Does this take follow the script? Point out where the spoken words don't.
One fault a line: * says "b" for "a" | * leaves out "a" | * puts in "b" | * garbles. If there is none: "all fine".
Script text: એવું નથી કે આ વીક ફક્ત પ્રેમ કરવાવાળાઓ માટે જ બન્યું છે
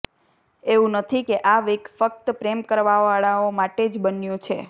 all fine